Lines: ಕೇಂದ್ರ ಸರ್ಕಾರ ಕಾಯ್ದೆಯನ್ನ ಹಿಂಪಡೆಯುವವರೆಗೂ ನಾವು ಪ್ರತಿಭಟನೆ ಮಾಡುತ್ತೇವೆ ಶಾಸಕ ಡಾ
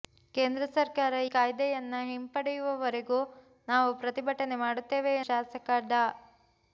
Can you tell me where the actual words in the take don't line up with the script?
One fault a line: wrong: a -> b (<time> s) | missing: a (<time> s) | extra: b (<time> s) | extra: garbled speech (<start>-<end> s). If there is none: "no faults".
no faults